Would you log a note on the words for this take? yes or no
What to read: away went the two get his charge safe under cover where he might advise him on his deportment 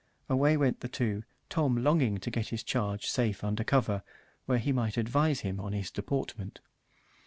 yes